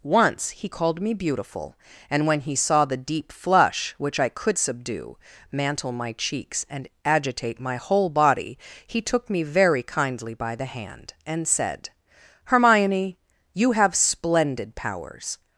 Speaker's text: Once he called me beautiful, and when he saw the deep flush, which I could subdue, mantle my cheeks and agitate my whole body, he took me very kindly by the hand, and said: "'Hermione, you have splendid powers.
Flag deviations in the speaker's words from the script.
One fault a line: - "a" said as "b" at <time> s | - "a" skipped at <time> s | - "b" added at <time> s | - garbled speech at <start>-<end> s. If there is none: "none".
none